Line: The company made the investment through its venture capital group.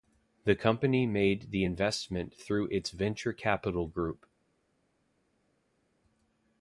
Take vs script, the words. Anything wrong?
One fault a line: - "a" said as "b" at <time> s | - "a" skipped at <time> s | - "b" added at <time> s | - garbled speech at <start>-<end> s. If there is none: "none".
none